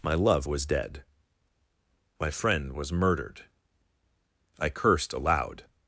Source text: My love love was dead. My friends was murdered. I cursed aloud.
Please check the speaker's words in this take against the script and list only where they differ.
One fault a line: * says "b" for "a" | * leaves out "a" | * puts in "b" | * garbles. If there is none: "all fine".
* leaves out "love"
* says "friend" for "friends"